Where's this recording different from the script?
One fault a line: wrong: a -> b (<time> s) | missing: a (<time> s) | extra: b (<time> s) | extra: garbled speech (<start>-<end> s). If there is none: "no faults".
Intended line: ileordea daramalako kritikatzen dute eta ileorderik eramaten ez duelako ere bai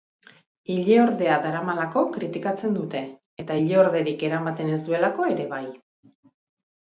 no faults